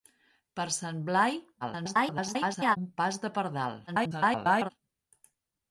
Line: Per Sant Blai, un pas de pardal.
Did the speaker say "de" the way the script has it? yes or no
yes